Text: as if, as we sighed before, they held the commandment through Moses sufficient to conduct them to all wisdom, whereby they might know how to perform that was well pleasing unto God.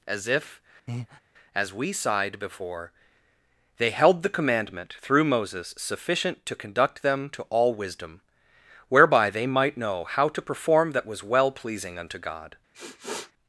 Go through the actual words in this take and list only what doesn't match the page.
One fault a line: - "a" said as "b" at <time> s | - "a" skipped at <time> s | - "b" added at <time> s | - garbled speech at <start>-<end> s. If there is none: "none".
none